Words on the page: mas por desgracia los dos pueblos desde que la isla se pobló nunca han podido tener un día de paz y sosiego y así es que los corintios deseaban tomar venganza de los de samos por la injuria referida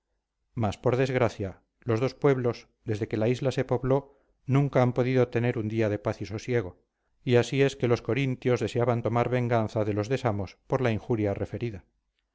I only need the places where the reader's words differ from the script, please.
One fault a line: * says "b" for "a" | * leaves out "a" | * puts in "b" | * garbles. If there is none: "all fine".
all fine